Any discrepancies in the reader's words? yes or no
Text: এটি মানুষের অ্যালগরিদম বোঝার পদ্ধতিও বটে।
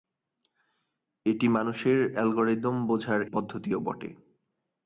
no